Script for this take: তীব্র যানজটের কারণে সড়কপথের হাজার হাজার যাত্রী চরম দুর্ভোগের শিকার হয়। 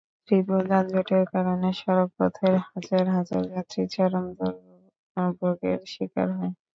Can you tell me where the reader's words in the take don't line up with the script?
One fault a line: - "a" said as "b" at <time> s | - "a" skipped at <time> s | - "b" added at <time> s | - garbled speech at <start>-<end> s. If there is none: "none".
none